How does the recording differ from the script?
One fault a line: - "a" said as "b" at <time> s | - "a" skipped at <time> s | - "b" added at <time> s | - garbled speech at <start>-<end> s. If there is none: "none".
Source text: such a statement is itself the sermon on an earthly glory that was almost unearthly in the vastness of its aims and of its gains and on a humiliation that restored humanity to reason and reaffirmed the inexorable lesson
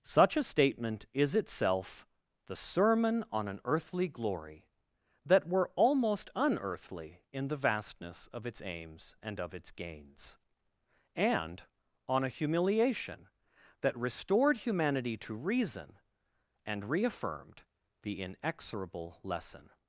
- "was" said as "were" at 5.5 s